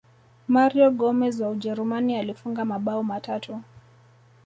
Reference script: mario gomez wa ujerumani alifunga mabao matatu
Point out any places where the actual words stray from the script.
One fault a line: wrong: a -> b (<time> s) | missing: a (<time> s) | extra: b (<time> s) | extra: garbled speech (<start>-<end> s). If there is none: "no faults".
no faults